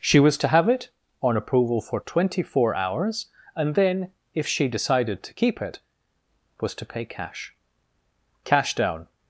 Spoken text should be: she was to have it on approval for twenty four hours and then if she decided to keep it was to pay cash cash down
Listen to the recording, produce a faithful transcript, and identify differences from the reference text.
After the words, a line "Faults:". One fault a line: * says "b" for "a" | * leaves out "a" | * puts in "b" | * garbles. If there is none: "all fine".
she was to have it on approval for twenty four hours and then if she decided to keep it was to pay cash cash down
Faults:
all fine